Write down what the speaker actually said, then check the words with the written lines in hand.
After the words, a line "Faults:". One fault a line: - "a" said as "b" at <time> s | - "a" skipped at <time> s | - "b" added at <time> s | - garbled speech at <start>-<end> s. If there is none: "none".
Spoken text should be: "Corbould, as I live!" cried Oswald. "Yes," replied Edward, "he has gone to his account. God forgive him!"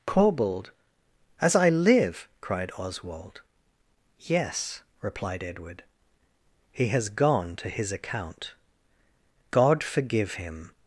"Corbould, as I live!" cried Oswald. "Yes," replied Edward, "he has gone to his account. God forgive him!"
Faults:
none